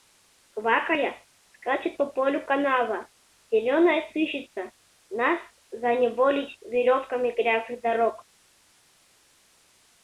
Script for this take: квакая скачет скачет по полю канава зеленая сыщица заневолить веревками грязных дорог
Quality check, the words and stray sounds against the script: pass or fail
fail